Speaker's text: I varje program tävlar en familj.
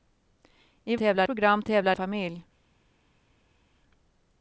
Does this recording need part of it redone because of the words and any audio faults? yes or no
yes